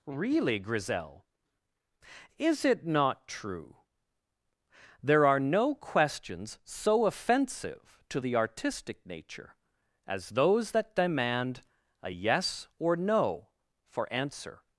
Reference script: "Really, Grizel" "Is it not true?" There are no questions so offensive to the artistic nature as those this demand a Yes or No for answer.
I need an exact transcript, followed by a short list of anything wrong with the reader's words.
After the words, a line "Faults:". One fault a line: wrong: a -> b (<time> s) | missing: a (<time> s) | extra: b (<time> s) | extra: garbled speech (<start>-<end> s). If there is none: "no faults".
"Really, Grizel" "Is it not true?" There are no questions so offensive to the artistic nature as those that demand a Yes or No for answer.
Faults:
wrong: this -> that (10.7 s)